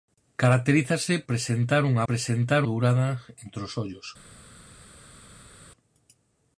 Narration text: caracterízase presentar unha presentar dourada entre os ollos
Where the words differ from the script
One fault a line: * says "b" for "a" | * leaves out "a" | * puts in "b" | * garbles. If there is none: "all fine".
all fine